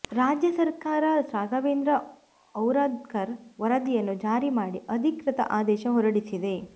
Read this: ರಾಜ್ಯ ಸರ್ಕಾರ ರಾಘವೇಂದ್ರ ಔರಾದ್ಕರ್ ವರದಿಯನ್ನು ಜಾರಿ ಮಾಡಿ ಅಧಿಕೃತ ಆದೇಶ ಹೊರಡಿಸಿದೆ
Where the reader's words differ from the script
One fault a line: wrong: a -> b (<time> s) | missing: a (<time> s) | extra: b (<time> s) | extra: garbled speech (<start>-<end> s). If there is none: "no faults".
no faults